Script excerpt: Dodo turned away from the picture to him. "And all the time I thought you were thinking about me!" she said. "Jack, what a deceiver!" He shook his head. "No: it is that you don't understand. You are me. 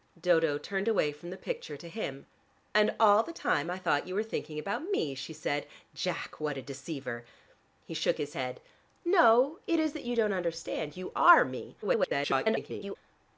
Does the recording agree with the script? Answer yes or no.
no